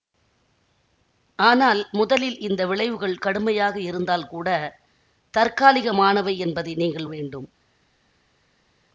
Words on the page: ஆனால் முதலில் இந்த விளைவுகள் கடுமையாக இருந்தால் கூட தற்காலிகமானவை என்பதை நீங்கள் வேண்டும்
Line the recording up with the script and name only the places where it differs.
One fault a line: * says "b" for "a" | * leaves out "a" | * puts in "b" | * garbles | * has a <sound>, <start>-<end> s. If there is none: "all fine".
all fine